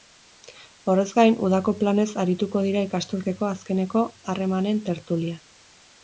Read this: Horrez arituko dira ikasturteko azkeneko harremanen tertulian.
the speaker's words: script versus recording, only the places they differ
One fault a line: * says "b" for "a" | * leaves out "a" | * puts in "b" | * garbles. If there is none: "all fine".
* puts in "gain udako planez"